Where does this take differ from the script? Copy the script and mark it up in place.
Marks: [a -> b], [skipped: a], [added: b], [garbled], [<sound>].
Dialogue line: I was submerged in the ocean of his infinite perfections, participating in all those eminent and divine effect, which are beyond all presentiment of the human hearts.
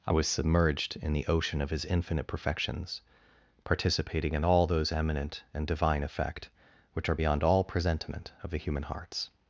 I was submerged in the ocean of his infinite perfections, participating in all those eminent and divine effect, which are beyond all presentiment of the human hearts.